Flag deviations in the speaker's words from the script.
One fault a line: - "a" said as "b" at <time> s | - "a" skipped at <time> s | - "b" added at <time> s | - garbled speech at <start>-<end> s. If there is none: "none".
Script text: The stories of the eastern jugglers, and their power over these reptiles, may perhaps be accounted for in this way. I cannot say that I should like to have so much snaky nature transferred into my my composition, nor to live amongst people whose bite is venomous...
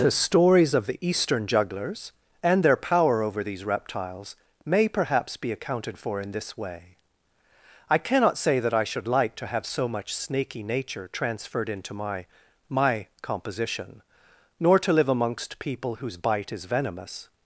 none